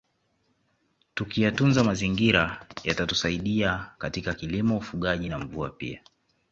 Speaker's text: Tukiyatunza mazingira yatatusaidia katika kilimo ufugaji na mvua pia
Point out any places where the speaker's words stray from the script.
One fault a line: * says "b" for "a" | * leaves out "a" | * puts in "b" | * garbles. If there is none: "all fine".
all fine